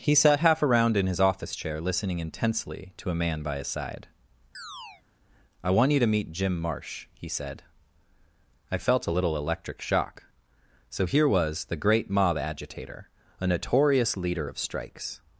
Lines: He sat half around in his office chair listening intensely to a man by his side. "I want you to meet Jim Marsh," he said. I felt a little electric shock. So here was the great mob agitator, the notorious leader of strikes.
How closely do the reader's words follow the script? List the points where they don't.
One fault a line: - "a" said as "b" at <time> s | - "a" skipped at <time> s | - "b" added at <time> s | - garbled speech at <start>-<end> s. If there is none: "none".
- "the" said as "a" at 13.4 s